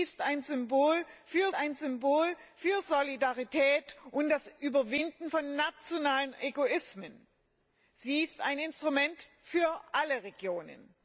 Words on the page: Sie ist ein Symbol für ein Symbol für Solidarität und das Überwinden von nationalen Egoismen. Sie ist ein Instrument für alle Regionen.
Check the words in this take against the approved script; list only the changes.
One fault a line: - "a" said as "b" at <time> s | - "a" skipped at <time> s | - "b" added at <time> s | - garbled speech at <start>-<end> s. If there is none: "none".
none